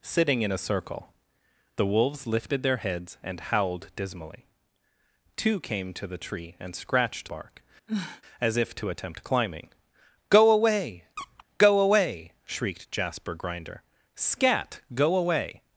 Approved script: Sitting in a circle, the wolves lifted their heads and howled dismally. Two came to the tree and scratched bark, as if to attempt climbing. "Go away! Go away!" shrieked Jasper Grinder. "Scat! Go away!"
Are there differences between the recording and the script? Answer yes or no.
no